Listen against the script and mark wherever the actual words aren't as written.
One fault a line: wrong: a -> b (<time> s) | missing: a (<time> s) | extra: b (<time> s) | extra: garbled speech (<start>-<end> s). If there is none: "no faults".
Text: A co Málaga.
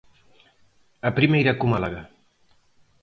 extra: primeira (1.2 s)